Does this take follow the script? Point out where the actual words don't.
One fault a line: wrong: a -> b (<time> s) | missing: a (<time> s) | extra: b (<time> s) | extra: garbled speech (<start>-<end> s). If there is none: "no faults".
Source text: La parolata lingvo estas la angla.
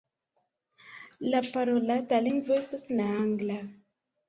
no faults